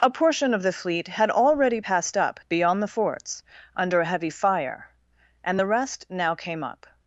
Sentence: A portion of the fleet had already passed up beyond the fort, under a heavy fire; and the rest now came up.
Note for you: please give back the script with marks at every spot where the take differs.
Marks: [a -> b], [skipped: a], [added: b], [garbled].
A portion of the fleet had already passed up beyond the [fort, -> forts] under a heavy fire; and the rest now came up.